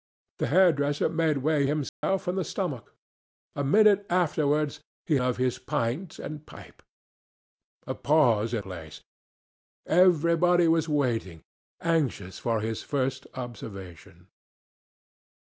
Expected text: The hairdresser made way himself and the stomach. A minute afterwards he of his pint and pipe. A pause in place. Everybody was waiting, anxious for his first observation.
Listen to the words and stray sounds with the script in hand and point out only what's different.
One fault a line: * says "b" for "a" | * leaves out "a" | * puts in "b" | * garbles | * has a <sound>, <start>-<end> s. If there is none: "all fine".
* has a dropout, 1.9-2.0 s